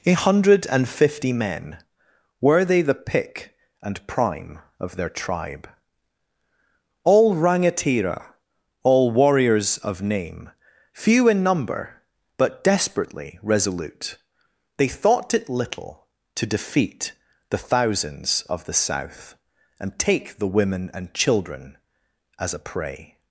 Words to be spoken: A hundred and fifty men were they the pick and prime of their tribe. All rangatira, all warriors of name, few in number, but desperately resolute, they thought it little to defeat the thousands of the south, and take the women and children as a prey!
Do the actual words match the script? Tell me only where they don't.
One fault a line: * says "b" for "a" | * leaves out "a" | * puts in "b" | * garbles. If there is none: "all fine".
all fine